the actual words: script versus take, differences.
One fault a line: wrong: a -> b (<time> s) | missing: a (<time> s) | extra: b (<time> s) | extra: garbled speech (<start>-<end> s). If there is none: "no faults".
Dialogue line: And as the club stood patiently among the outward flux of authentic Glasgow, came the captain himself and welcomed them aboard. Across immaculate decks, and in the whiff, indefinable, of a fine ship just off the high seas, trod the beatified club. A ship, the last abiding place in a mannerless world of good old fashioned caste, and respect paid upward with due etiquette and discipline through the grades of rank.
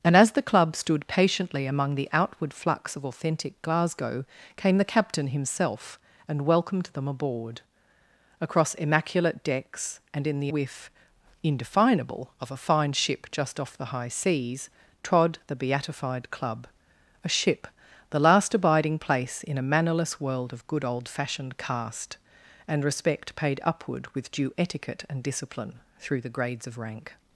no faults